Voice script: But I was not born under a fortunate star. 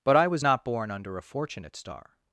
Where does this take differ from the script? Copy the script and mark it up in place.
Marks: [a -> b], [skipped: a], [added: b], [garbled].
But I was not born under a fortunate star.